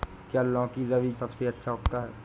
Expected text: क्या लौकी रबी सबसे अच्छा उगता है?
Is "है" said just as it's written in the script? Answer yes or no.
yes